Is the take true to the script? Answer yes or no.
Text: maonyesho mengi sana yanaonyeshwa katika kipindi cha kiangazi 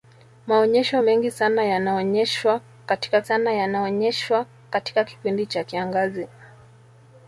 no